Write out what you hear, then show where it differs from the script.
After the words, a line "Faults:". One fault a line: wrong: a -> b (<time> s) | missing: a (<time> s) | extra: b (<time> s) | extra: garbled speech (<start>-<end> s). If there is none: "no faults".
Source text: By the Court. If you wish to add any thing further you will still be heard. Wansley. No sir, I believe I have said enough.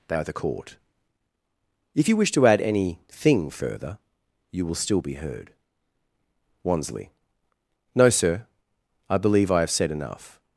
They are the Court. If you wish to add any thing further you will still be heard. Wansley. No sir, I believe I have said enough.
Faults:
wrong: By -> They are (0.1 s)